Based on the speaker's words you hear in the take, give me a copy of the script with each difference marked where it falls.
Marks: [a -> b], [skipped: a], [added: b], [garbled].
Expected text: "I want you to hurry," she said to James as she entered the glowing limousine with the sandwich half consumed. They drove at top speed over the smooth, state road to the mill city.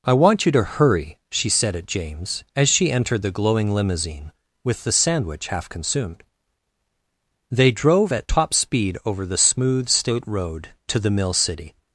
"I want you to hurry," she said [to -> at] James as she entered the glowing limousine with the sandwich half consumed. They drove at top speed over the smooth, state road to the mill city.